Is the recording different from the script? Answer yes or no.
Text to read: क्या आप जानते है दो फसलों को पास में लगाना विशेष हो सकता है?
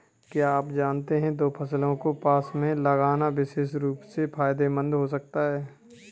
yes